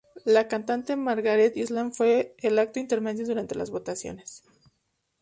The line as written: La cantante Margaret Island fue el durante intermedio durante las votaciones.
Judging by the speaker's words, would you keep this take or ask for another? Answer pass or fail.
fail